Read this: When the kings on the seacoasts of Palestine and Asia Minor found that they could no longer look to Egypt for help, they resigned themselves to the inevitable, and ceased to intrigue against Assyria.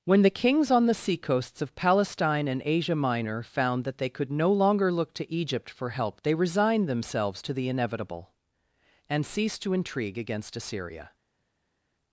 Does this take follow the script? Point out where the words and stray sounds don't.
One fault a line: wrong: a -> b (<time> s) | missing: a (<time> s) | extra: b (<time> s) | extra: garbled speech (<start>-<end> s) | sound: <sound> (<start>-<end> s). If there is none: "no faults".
no faults